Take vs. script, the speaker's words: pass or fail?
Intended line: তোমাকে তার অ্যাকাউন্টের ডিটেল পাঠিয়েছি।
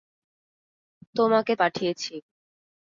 fail